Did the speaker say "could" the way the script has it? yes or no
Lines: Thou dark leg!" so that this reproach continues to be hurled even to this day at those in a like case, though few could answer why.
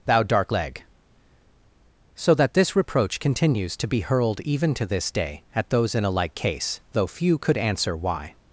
yes